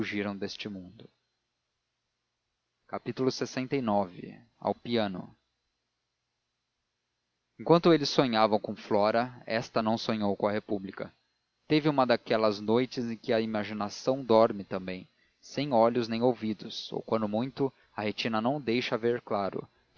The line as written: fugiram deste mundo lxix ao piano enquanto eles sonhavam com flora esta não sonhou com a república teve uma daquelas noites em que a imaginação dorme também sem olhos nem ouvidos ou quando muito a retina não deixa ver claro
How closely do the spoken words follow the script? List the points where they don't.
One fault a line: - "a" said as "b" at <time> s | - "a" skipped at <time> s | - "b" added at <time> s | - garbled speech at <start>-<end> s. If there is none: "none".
none